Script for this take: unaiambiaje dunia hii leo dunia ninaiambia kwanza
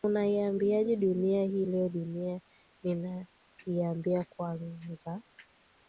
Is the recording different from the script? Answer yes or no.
no